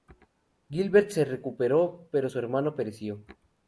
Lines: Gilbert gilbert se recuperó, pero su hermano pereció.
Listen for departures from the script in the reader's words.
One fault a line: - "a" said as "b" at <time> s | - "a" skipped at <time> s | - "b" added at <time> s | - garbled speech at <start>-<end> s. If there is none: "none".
- "gilbert" skipped at 1.1 s